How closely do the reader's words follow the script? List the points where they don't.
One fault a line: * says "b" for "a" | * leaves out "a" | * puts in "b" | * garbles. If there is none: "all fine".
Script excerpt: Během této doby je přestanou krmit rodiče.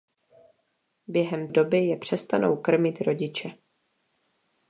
* leaves out "této"